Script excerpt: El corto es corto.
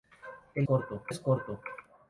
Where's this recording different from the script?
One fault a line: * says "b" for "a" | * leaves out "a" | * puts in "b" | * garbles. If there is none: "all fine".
all fine